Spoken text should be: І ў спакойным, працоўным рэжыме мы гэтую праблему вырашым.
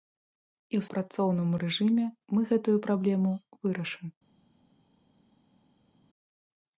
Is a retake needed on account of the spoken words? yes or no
yes